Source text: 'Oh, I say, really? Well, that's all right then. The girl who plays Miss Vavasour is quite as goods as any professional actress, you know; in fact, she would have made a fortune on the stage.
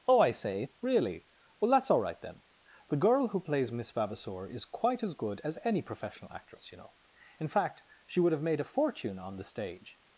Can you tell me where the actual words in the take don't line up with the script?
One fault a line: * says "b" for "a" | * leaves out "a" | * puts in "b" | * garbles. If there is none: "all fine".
* says "good" for "goods"